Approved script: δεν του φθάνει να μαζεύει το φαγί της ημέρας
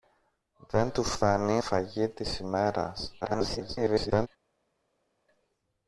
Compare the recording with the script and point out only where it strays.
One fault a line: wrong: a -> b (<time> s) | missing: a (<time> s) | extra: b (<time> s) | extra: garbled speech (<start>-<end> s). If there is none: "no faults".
missing: να μαζεύει το (1.6 s)
extra: garbled speech (3.2-4.3 s)